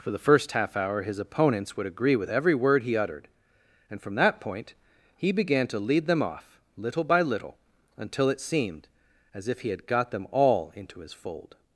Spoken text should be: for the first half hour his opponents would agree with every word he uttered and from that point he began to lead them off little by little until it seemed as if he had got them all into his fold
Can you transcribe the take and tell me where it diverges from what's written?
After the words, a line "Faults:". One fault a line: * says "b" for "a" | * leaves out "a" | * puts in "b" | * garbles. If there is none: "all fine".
for the first half hour his opponents would agree with every word he uttered and from that point he began to lead them off little by little until it seemed as if he had got them all into his fold
Faults:
all fine